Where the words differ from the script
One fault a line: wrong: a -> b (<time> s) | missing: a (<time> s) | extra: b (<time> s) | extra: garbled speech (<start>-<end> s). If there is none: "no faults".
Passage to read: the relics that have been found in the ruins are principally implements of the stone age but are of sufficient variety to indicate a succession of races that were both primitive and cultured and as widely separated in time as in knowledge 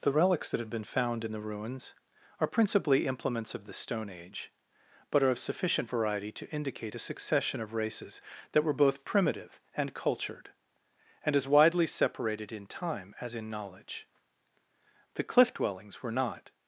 extra: the cliff dwellings were not (15.1 s)